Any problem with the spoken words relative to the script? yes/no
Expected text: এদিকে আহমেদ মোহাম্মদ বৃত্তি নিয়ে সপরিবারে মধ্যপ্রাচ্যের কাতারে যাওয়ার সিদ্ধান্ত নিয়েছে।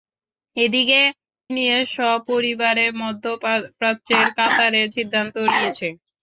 yes